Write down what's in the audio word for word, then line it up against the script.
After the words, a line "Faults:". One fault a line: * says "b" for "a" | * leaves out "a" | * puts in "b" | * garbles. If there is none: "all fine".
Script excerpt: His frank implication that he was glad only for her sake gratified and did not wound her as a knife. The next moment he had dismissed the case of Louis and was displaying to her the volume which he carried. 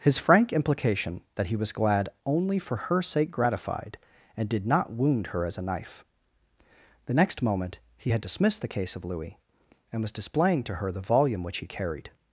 His frank implication that he was glad only for her sake gratified and did not wound her as a knife. The next moment he had dismissed the case of Louis and was displaying to her the volume which he carried.
Faults:
all fine